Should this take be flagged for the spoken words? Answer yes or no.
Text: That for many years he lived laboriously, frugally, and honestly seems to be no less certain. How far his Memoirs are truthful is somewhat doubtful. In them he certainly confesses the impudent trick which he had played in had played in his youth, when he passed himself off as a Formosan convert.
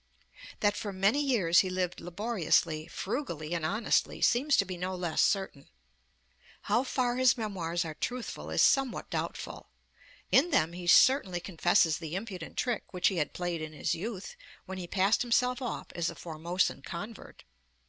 yes